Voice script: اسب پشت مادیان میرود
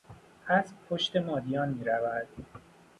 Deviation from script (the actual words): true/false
false